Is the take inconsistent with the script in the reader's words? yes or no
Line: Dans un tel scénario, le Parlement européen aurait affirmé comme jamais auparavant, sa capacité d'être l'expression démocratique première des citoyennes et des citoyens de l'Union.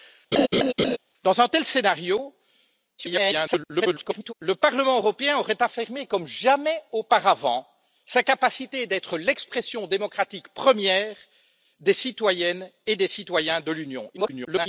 yes